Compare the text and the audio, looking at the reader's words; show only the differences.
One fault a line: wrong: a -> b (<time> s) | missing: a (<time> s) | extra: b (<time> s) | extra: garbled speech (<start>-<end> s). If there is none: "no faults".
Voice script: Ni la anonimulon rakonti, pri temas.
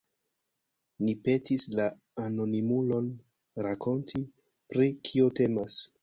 extra: petis (1.2 s)
extra: kio (5.1 s)